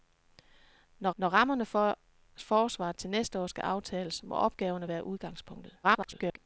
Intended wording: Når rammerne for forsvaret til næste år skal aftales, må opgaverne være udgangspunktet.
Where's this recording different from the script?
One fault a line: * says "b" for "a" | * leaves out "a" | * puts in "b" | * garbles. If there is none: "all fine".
* puts in "når"
* garbles